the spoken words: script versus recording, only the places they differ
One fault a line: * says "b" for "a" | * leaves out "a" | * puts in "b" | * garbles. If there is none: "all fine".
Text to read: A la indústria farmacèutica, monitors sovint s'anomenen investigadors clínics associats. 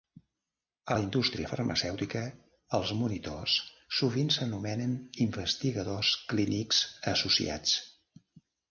* puts in "els"